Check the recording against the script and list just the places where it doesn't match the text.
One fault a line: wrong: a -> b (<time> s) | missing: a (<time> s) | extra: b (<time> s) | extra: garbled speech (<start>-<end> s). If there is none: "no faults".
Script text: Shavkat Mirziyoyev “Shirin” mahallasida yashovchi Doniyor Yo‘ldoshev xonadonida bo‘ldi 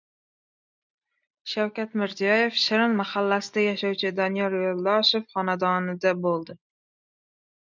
no faults